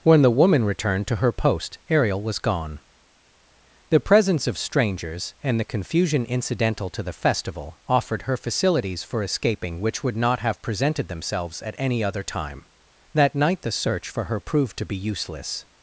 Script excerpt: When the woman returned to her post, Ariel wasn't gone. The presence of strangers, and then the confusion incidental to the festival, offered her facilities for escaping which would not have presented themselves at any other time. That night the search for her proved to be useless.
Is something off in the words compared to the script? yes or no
yes